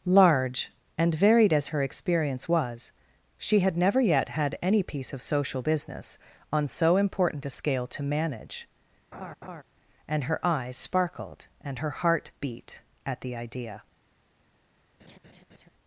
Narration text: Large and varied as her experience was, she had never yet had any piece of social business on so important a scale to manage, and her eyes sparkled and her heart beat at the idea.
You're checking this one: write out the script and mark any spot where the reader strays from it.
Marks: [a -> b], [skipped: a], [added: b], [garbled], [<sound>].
Large and varied as her experience was, she had never yet had any piece of social business on so important a scale to manage, [laugh] and her eyes sparkled and her heart beat at the idea. [laugh]